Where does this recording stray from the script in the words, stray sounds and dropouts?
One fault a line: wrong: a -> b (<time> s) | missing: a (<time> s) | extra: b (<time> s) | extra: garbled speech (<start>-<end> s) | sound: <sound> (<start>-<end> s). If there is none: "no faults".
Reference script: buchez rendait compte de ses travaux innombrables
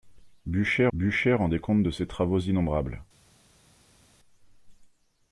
extra: buchez (0.9 s)